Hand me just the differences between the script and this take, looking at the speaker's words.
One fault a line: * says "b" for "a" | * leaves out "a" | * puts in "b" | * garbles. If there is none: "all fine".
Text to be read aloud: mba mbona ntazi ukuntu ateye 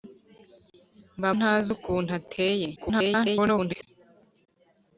* leaves out "mbona"
* garbles